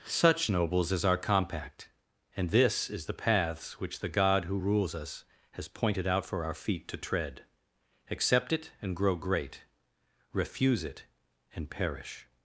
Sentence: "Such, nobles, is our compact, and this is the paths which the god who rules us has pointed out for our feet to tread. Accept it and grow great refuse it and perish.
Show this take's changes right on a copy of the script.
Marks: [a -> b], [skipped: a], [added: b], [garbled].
"Such, nobles, is our compact, and this is the paths which the god who rules us has pointed out for our feet to tread. Accept it and grow great refuse it and perish.